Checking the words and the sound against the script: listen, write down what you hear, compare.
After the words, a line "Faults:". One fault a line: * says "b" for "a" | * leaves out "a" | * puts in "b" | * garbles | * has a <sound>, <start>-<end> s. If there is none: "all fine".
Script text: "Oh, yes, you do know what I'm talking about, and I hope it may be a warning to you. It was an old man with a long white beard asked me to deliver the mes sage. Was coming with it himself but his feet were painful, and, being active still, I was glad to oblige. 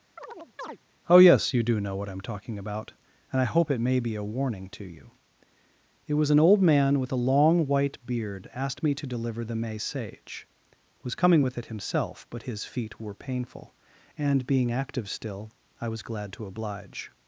"Oh, yes, you do know what I'm talking about, and I hope it may be a warning to you. It was an old man with a long white beard asked me to deliver the may sage. Was coming with it himself but his feet were painful, and, being active still, I was glad to oblige.
Faults:
* has a chirp, 0.2-0.8 s
* says "may" for "mes"